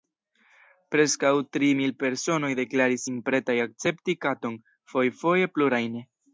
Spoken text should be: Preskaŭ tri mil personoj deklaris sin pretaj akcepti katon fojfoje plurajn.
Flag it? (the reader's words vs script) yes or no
no